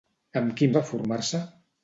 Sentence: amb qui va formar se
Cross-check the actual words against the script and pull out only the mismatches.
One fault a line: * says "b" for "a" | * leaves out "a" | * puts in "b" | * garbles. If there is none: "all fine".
all fine